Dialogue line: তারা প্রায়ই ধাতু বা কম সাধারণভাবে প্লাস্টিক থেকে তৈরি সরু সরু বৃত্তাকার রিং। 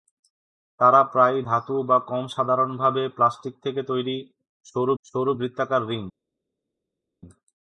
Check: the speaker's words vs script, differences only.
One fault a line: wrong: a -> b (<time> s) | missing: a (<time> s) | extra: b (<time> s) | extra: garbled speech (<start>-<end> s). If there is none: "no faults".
no faults